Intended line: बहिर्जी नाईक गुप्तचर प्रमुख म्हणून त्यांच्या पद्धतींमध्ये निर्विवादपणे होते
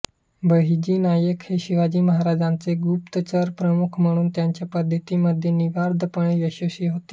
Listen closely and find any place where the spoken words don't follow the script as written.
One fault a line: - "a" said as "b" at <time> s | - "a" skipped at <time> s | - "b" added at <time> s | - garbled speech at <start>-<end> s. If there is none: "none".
- "हे शिवाजी महाराजांचे" added at 1.4 s
- "यशस्वी" added at 6.4 s